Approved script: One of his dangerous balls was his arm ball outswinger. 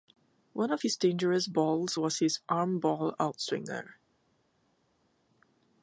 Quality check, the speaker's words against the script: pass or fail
pass